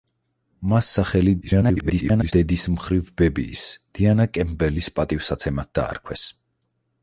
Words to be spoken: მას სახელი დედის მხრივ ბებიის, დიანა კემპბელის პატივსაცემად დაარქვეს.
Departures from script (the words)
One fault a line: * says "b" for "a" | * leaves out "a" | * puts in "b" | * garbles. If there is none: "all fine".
* garbles